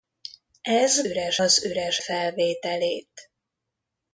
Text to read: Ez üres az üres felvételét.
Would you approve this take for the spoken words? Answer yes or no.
yes